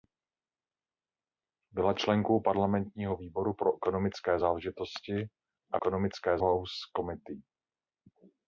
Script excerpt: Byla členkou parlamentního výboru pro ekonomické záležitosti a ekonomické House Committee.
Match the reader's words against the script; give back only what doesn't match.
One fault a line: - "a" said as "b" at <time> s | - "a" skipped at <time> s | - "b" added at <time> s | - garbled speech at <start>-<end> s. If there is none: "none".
none